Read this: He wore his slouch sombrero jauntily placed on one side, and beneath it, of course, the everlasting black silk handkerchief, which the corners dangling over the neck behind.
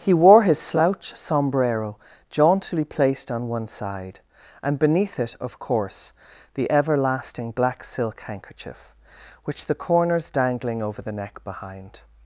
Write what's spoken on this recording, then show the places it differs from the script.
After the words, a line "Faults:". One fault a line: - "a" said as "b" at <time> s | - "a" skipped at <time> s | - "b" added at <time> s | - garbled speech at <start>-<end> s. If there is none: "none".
He wore his slouch sombrero jauntily placed on one side, and beneath it, of course, the everlasting black silk handkerchief, which the corners dangling over the neck behind.
Faults:
none